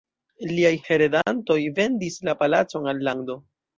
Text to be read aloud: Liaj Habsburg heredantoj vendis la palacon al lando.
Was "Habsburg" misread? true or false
true